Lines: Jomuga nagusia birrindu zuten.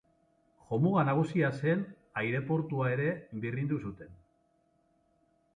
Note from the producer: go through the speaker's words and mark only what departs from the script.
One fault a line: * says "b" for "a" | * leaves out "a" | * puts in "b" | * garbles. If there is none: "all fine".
* puts in "zen aireportua ere"